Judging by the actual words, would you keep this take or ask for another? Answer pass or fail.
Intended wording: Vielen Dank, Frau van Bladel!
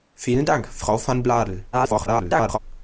fail